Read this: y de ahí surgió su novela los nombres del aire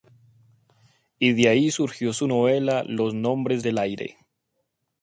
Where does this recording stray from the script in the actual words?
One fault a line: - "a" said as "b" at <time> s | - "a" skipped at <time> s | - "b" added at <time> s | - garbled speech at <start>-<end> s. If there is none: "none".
none